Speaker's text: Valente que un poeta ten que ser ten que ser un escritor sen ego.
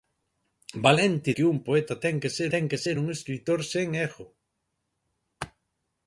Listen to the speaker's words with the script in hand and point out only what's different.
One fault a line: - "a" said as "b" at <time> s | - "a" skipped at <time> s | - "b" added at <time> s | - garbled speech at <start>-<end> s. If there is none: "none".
none